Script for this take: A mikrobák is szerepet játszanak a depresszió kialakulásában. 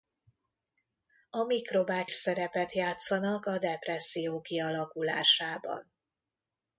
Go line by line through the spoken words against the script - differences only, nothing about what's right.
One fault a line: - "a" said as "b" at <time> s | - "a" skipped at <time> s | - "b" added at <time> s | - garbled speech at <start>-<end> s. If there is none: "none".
- "is" skipped at 2.1 s